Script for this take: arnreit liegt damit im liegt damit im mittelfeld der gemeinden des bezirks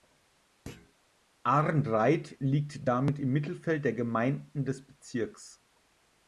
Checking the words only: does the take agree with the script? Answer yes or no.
no